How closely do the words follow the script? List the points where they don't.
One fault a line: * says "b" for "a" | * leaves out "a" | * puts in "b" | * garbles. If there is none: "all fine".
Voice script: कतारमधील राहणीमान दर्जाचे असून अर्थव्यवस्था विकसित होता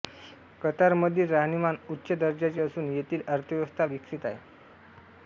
* puts in "उच्च"
* puts in "येथील"
* says "आहे" for "होता"